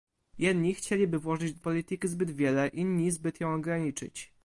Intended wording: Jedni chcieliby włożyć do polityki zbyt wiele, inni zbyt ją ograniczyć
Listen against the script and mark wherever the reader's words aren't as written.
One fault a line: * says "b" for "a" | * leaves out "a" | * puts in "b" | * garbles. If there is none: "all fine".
all fine